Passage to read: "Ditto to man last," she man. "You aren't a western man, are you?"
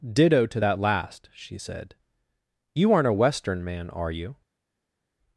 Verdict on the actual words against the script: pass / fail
fail